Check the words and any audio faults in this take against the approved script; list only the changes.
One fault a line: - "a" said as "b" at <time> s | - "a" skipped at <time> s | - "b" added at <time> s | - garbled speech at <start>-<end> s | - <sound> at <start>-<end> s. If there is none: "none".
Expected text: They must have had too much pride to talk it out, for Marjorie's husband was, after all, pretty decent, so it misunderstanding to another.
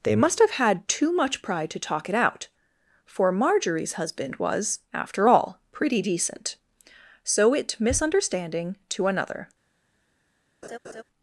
- laugh at 10.6-11.0 s